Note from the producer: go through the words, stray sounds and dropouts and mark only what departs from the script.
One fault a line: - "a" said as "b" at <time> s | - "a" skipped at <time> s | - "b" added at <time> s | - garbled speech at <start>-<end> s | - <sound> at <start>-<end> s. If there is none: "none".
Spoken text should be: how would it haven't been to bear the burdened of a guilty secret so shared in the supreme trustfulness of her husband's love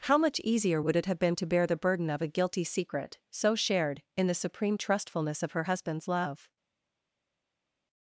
- "much easier" added at 0.2 s
- "haven't" said as "have" at 1.0 s
- "burdened" said as "burden" at 1.8 s